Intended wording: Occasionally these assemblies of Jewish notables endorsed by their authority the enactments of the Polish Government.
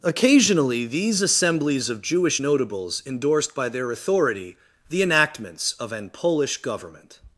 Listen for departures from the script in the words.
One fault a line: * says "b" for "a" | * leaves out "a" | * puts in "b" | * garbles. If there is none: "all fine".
* says "an" for "the"